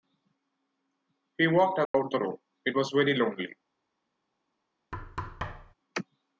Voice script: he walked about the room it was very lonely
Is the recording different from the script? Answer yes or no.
no